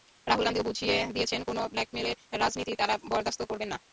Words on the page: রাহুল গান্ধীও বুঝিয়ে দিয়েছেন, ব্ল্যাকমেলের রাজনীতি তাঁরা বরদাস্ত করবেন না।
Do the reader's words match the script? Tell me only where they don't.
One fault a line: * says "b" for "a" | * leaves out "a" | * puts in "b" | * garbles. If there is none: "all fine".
* puts in "কোনো"